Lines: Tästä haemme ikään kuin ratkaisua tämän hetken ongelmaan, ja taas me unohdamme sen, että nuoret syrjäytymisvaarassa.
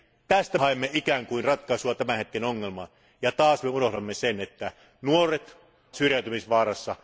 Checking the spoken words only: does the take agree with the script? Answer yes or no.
yes